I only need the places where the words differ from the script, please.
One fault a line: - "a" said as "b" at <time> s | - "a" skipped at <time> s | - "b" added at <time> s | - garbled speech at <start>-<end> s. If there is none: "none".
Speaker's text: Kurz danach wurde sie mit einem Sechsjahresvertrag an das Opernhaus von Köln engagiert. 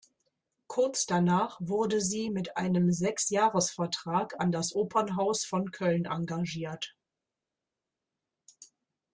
none